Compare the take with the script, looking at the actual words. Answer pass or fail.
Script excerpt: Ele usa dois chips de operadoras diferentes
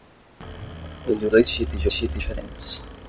fail